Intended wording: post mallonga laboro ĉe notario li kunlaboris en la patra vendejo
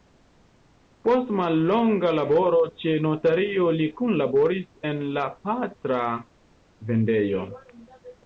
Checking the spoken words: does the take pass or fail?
pass